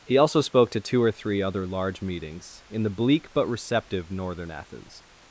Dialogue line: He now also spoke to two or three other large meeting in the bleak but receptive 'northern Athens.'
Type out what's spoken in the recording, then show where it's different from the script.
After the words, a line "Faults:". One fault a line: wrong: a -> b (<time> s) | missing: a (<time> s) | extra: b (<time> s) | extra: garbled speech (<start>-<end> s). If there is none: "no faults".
He also spoke to two or three other large meetings in the bleak but receptive 'northern Athens.'
Faults:
missing: now (0.2 s)
wrong: meeting -> meetings (2.0 s)